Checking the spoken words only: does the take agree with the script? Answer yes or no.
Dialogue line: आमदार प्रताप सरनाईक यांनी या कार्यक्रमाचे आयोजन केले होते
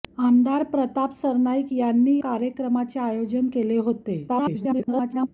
no